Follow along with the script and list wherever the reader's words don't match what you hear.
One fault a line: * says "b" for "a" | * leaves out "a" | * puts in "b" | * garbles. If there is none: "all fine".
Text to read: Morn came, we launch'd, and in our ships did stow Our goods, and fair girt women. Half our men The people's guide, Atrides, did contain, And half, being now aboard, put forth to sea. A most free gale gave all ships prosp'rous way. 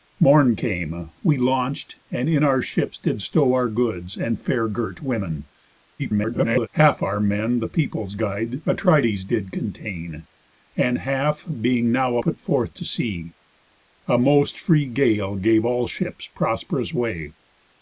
* garbles
* leaves out "aboard"